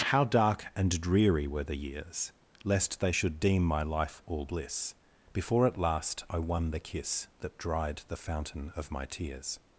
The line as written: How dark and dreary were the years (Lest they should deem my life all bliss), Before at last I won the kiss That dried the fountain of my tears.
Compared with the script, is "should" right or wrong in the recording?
right